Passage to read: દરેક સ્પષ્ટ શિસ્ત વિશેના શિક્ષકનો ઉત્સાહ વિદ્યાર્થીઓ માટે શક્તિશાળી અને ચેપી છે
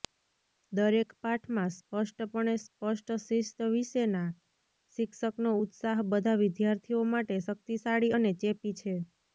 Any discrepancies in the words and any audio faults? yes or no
yes